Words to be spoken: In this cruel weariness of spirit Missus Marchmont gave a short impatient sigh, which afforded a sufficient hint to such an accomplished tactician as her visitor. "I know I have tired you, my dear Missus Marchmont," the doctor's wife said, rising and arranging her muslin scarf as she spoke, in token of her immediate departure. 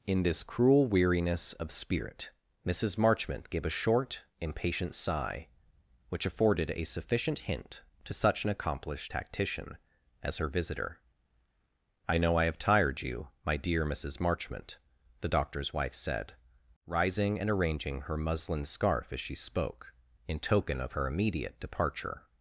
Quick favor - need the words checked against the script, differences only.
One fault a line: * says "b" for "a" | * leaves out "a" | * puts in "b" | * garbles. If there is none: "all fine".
all fine